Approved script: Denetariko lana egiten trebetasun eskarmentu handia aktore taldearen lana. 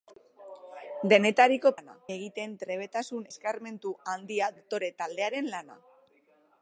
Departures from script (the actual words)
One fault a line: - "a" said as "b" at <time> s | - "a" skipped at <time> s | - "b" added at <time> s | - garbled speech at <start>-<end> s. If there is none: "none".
none